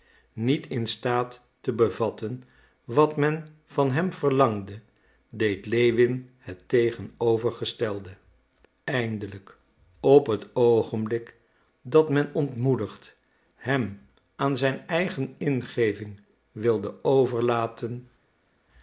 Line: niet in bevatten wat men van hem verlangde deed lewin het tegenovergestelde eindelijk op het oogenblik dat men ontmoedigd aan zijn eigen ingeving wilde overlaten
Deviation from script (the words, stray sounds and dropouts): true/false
true